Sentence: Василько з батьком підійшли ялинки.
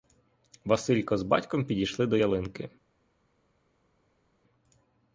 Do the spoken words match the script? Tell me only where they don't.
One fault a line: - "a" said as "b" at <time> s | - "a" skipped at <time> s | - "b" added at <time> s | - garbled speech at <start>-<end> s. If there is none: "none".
- "до" added at 2.1 s